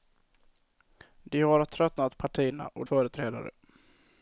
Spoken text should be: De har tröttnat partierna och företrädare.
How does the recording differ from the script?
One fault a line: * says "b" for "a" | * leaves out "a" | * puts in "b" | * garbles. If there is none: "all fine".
all fine